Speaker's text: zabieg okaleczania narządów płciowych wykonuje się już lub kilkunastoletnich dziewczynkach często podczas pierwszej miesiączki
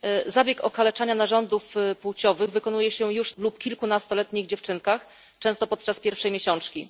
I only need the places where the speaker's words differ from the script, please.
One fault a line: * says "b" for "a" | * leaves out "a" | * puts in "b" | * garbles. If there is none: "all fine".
all fine